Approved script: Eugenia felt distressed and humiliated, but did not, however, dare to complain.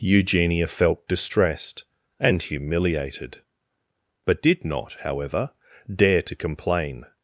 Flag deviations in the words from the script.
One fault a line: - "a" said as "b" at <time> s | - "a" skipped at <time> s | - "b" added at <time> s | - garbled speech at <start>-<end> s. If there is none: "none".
none